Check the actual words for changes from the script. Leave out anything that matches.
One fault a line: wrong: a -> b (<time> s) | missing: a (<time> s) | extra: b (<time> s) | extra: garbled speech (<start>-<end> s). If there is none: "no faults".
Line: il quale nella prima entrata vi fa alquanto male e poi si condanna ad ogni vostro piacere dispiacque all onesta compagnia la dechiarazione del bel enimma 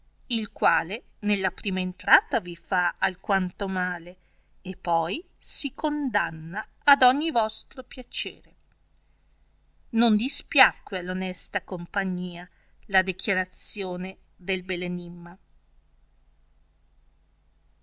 extra: non (9.9 s)